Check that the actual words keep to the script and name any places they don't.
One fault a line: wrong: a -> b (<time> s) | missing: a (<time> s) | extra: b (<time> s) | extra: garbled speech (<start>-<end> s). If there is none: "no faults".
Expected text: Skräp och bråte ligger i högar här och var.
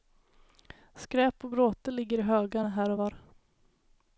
no faults